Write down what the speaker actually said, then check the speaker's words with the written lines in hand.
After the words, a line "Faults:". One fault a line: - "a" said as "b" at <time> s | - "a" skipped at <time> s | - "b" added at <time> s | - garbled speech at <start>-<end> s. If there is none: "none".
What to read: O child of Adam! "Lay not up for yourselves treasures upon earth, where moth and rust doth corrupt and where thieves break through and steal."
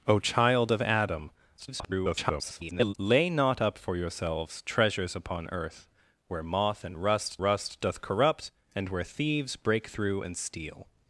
O child of Adam! [garbled] "Lay not up for yourselves treasures upon earth, where moth and rust rust doth corrupt and where thieves break through and steal."
Faults:
- garbled speech at 1.6-2.9 s
- "rust" added at 7.4 s